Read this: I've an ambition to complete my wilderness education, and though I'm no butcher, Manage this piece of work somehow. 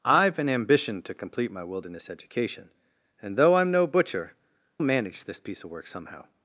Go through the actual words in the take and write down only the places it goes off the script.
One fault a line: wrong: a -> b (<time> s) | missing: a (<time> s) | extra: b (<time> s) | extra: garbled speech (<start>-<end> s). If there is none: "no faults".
no faults